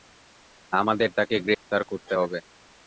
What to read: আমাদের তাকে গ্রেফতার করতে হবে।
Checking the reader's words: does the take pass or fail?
pass